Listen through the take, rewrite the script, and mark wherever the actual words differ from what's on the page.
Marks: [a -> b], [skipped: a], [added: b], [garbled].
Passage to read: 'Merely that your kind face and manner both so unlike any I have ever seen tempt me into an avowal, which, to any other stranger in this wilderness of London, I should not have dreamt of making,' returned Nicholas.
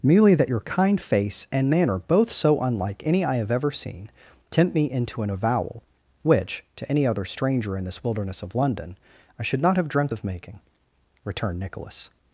'Merely that your kind face and manner both so unlike any I have ever seen tempt me into an avowal, which, to any other stranger in this wilderness of London, I should not have dreamt of making,' returned Nicholas.